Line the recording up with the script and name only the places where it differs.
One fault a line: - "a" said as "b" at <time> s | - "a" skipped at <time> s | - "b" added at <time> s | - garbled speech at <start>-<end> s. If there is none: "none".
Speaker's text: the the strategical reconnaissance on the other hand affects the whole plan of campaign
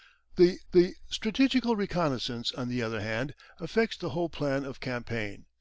none